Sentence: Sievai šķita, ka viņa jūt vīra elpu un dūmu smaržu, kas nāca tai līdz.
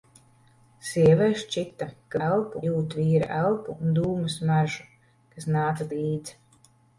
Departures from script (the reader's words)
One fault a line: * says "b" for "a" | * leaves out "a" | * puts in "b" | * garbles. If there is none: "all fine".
* says "elpu" for "viņa"
* leaves out "tai"